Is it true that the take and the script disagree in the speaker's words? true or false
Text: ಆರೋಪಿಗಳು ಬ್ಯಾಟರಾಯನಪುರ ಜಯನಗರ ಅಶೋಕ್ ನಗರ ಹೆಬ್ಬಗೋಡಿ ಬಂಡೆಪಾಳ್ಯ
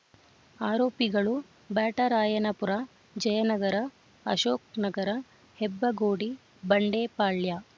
false